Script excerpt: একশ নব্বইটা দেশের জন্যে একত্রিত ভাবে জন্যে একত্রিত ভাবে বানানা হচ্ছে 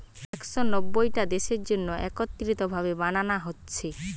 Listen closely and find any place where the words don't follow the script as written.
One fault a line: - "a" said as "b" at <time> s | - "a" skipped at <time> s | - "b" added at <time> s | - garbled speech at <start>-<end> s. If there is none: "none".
- "জন্যে একত্রিত ভাবে" skipped at 2.9 s